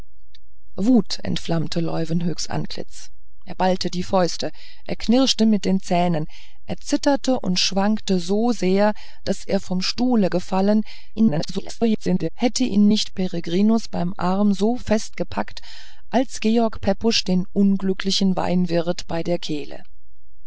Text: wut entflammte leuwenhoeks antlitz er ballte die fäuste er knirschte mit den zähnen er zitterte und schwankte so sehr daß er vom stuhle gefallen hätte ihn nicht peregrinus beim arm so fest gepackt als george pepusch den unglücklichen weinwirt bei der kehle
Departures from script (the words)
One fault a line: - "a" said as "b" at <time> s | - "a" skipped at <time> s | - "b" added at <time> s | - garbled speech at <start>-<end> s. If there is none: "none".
- garbled speech at 11.2-12.3 s